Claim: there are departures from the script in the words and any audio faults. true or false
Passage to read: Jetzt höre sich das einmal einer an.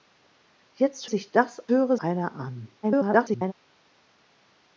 true